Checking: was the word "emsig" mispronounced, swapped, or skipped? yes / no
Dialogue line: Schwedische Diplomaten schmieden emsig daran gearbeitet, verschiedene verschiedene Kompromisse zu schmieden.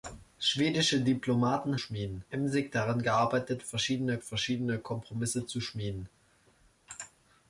no